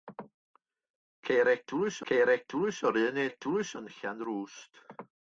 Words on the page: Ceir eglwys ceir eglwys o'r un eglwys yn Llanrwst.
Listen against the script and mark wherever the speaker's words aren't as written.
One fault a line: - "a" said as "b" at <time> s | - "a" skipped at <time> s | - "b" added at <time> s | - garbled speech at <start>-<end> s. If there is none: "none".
none